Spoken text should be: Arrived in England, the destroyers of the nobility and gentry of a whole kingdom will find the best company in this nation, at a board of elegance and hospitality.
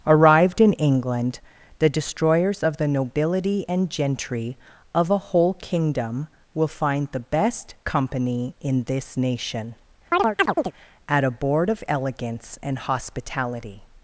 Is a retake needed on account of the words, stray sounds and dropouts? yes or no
yes